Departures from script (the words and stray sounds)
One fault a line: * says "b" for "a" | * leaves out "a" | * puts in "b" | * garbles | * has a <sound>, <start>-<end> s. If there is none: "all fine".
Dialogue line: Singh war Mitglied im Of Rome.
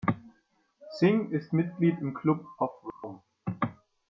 * says "ist" for "war"
* puts in "Club"
* has a dropout, 2.9-3.0 s